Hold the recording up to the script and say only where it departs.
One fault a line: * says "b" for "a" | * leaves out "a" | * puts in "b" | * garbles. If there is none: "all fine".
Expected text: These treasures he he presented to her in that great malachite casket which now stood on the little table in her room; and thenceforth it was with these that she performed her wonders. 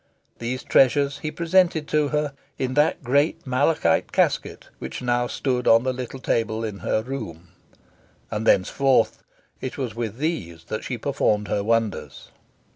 * leaves out "he"